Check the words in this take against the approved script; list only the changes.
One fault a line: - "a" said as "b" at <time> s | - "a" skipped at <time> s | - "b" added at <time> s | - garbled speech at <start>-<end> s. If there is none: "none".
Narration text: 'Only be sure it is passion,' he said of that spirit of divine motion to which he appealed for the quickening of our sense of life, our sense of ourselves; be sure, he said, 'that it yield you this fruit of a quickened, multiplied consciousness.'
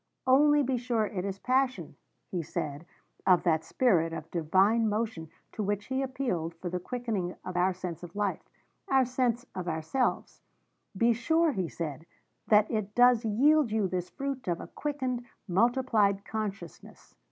- "does" added at 12.9 s